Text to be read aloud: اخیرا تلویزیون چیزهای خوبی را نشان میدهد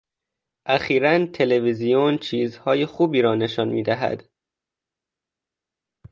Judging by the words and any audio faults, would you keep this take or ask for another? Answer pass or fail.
pass